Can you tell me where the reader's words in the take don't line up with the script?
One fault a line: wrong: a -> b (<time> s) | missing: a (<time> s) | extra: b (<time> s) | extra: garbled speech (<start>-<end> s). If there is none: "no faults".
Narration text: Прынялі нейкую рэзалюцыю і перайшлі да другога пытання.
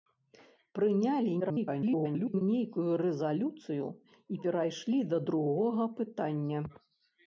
extra: garbled speech (1.4-2.4 s)